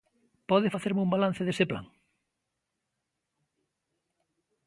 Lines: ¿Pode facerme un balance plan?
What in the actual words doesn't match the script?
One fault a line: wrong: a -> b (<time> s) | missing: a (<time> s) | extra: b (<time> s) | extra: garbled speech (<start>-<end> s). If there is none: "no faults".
extra: dese (1.4 s)